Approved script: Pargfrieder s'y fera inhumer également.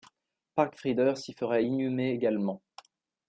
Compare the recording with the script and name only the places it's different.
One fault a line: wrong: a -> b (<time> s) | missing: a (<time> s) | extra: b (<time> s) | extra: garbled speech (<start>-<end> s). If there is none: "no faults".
no faults